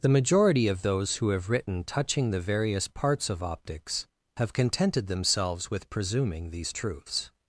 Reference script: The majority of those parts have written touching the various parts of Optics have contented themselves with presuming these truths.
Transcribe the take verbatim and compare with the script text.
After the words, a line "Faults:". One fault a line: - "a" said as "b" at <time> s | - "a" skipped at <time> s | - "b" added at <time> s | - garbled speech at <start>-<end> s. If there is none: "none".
The majority of those who have written touching the various parts of Optics have contented themselves with presuming these truths.
Faults:
- "parts" said as "who" at 1.2 s